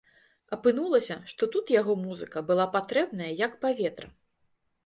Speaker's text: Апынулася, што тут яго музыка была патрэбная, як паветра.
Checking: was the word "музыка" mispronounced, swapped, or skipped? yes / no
no